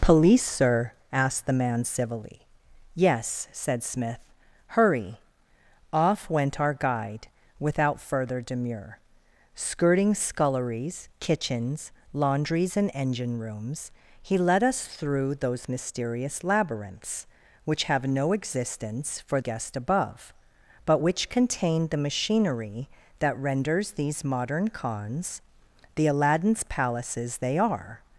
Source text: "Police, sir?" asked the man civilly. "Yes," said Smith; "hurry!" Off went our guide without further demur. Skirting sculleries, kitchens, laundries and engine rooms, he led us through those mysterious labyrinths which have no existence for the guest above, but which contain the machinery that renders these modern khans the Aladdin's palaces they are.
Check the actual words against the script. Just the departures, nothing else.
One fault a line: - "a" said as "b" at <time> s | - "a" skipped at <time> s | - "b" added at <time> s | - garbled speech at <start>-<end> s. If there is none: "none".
- "the" skipped at 19.4 s